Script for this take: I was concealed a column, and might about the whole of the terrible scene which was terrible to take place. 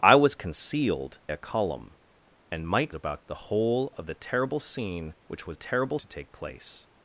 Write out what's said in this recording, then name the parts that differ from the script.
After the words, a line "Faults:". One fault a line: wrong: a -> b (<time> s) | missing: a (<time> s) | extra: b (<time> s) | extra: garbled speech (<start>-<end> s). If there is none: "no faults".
I was concealed a column, and might about the whole of the terrible scene which was terrible to take place.
Faults:
no faults